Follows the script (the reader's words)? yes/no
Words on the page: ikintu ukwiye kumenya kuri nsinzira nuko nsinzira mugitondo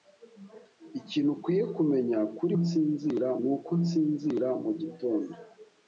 yes